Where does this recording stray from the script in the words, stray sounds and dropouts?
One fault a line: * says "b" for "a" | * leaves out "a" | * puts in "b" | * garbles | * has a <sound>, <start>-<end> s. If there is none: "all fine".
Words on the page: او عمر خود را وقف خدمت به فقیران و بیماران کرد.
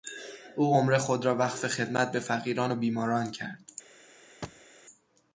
* has a thud, 4.4-4.7 s